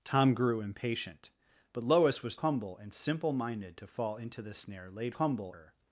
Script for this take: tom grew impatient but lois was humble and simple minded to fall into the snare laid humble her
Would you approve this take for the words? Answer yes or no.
yes